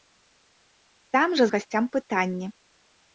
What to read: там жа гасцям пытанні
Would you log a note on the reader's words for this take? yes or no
no